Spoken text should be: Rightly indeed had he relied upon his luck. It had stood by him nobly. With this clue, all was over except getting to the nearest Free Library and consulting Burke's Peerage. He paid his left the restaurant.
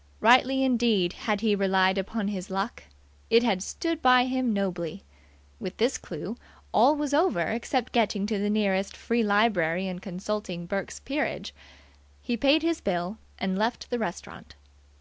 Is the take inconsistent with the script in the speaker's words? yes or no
yes